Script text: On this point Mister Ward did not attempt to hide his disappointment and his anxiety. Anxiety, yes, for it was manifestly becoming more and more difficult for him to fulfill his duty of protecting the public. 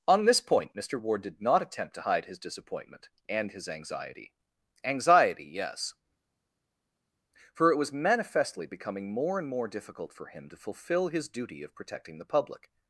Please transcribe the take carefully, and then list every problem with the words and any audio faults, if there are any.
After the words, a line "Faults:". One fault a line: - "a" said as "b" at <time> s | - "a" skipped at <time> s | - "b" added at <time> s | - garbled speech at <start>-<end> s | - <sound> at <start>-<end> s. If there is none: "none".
On this point Mister Ward did not attempt to hide his disappointment and his anxiety. Anxiety, yes, for it was manifestly becoming more and more difficult for him to fulfill his duty of protecting the public.
Faults:
none